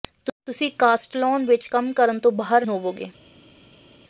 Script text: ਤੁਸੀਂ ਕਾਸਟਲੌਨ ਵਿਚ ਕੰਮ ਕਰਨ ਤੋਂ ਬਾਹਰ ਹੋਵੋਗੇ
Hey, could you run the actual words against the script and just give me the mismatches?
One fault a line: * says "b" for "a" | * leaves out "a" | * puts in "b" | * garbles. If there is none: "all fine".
all fine